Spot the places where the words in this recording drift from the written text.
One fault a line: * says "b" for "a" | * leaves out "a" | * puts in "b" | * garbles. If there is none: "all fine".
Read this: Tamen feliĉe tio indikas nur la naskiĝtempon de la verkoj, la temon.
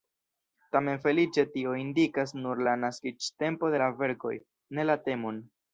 * puts in "ne"